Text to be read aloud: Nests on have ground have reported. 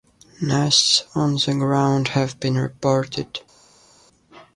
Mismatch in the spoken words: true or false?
true